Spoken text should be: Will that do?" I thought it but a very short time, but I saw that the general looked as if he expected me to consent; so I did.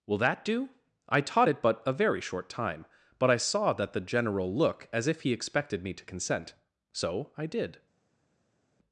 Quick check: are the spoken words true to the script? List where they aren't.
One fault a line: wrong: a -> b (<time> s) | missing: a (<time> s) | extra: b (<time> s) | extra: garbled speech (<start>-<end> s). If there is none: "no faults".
wrong: thought -> taught (1.2 s)
wrong: looked -> look (4.5 s)